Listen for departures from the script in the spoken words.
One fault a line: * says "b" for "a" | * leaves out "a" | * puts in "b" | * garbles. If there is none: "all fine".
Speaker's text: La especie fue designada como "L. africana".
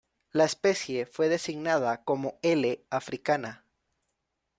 all fine